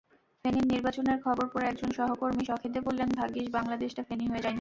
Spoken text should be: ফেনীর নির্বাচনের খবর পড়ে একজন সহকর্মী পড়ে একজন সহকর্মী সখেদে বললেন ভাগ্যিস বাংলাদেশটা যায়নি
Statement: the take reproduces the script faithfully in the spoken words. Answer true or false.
false